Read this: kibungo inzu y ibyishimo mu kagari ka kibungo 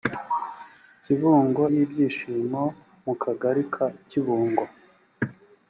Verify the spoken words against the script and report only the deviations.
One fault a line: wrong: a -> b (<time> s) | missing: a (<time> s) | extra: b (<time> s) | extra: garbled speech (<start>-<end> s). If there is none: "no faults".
missing: inzu (1.6 s)